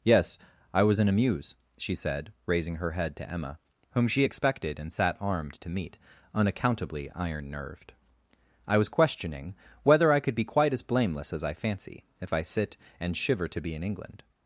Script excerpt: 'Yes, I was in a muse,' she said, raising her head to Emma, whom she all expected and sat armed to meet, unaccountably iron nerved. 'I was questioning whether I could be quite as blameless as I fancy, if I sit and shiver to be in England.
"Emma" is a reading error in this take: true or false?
false